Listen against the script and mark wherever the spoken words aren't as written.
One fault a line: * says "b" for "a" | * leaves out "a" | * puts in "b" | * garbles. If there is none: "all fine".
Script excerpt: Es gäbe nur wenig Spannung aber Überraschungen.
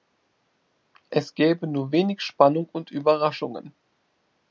* says "und" for "aber"